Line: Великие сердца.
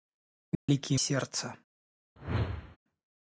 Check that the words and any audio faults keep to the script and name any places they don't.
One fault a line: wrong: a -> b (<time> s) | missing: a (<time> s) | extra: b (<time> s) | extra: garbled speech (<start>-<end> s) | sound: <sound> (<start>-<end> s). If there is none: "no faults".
sound: dropout (0.6-0.7 s)
sound: whoosh (2.2-2.8 s)